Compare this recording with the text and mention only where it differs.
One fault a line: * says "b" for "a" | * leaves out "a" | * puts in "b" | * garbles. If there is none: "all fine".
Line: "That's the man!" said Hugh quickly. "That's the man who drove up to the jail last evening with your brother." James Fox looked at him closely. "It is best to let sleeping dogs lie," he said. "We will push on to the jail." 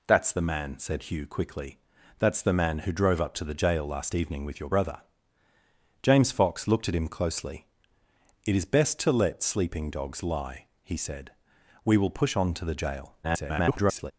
* garbles